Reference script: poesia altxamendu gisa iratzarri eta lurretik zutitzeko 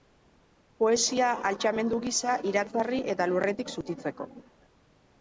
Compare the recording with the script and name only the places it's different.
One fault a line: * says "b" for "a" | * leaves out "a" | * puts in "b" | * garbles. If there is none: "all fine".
all fine